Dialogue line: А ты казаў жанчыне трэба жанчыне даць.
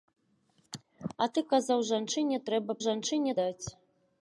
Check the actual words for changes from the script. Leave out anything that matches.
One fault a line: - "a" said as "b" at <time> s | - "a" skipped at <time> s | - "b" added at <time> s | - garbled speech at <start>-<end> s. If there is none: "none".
none